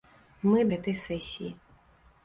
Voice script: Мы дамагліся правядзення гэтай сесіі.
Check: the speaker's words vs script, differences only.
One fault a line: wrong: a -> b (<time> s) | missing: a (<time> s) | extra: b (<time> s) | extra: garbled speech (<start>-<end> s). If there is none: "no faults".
missing: дамагліся правядзення (0.6 s)